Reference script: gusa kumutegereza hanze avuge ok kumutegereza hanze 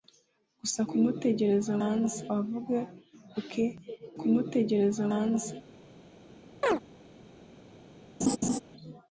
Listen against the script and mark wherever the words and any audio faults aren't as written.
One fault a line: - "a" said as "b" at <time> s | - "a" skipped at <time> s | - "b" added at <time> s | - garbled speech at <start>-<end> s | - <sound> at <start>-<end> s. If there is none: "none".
- chirp at 6.6-6.8 s
- laugh at 8.2-8.6 s